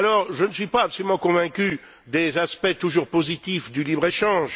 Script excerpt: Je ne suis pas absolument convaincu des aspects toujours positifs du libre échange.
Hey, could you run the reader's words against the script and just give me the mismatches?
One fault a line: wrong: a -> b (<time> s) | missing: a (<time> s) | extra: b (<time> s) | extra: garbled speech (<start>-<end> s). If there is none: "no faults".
no faults